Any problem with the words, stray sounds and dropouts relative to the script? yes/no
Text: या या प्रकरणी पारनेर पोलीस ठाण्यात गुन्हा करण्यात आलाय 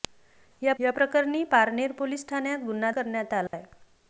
yes